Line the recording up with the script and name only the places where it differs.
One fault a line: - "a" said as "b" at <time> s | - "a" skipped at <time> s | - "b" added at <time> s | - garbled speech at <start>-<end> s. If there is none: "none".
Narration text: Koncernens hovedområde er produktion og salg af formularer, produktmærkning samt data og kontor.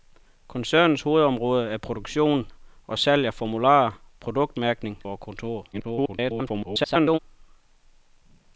- "samt data" skipped at 5.0 s
- garbled speech at 5.7-7.2 s